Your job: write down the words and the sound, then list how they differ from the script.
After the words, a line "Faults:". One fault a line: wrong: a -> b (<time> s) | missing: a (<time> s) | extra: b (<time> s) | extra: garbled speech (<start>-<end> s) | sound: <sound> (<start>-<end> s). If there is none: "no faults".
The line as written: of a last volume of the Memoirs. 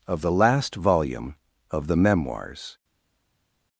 of the last volume of the Memoirs.
Faults:
wrong: a -> the (0.2 s)